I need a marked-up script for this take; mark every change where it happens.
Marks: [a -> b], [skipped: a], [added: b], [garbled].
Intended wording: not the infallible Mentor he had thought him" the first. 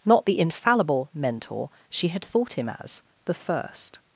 not the infallible Mentor [he -> she] had thought him" [added: as] the first.